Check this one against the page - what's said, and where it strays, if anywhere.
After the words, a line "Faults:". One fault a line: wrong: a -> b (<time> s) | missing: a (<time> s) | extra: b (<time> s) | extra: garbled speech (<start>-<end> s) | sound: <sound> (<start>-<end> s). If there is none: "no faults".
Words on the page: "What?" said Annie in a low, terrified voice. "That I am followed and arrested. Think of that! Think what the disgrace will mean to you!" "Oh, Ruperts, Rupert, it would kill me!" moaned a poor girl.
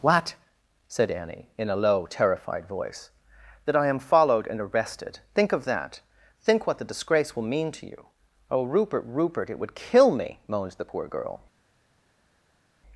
"What?" said Annie in a low, terrified voice. "That I am followed and arrested. Think of that! Think what the disgrace will mean to you!" "Oh, Rupert, Rupert, it would kill me!" moaned the poor girl.
Faults:
wrong: Ruperts -> Rupert (8.6 s)
wrong: a -> the (10.7 s)